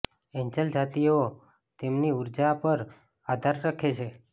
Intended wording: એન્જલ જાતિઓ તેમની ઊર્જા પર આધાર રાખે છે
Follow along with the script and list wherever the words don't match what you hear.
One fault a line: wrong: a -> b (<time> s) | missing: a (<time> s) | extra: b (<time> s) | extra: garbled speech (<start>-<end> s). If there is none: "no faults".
no faults